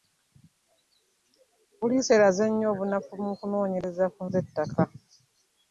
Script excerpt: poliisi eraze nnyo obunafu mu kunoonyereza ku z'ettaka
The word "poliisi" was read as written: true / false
true